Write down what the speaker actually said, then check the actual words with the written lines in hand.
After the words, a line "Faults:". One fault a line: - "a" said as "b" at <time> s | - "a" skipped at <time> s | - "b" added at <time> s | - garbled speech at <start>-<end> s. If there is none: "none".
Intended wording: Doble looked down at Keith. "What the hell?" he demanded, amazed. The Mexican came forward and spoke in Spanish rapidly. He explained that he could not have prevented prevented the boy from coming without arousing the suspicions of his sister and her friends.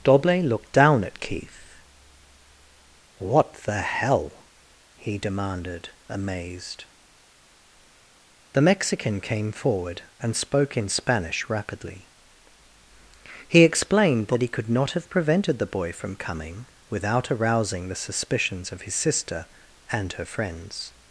Doble looked down at Keith. "What the hell?" he demanded, amazed. The Mexican came forward and spoke in Spanish rapidly. He explained that he could not have prevented the boy from coming without arousing the suspicions of his sister and her friends.
Faults:
- "prevented" skipped at 15.6 s